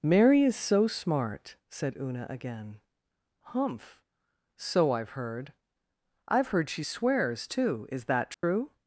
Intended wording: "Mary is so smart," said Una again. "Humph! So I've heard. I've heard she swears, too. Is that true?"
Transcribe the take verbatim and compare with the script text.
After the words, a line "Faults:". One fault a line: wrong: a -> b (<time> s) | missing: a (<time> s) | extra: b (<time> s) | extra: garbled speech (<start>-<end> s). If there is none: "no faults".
"Mary is so smart," said Una again. "Humph! So I've heard. I've heard she swears, too. Is that true?"
Faults:
no faults